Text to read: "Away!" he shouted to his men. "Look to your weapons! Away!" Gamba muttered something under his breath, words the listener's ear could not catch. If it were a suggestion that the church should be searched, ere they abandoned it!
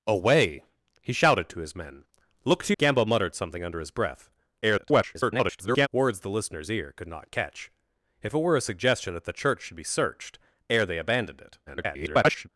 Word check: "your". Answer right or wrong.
wrong